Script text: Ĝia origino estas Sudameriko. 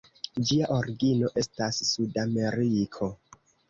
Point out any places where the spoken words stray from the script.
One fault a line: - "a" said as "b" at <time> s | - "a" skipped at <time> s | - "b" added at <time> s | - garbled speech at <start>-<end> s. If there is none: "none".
none